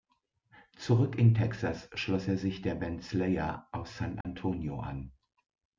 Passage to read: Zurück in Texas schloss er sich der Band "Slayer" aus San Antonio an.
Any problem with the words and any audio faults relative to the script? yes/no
yes